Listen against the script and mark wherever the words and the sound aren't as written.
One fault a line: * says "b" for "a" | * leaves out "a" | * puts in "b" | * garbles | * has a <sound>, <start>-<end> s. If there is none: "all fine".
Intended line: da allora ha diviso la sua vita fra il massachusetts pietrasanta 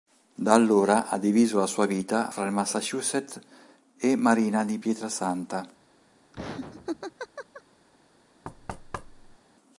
* puts in "e marina di"
* has a laugh, 6.3-7.6 s
* has a thud, 8.4-9.4 s